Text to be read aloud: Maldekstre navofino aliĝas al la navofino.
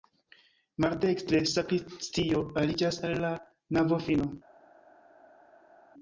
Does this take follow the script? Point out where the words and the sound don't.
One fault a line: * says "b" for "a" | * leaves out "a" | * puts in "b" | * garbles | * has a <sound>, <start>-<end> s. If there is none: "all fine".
* says "sakristio" for "navofino"